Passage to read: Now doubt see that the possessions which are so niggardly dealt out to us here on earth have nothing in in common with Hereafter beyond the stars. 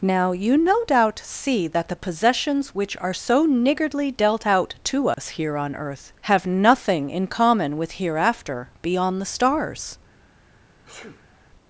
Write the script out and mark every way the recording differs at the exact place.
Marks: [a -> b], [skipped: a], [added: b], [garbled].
Now [added: you no] doubt see that the possessions which are so niggardly dealt out to us here on earth have nothing in [skipped: in] common with Hereafter beyond the stars.